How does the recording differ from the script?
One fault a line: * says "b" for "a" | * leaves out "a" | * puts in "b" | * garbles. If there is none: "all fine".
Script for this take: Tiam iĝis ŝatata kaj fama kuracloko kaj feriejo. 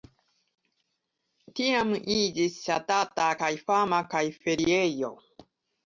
* leaves out "kuracloko"